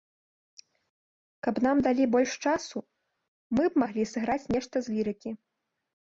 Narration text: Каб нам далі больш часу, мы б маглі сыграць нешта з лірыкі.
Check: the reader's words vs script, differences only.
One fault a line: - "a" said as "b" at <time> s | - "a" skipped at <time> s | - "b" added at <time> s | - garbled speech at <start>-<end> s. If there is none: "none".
none